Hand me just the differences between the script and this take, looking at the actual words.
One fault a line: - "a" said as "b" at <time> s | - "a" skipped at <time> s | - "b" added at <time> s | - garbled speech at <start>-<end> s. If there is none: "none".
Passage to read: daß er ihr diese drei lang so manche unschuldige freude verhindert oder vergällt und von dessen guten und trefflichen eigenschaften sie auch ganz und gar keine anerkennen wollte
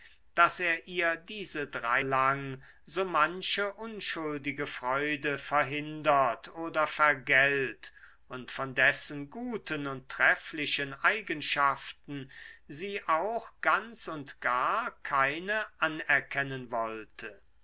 none